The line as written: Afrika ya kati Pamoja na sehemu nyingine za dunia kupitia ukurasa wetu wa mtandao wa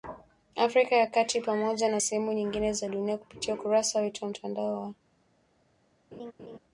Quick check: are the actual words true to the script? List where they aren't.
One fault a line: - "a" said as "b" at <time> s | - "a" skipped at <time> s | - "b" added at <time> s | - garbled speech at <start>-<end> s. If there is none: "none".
none